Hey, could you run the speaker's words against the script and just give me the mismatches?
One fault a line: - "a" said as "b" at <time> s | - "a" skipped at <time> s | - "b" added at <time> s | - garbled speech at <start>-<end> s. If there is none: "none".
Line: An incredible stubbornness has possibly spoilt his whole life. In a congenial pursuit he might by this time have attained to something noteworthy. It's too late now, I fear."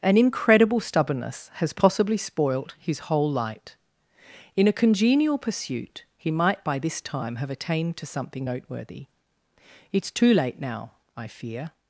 - "life" said as "light" at 3.3 s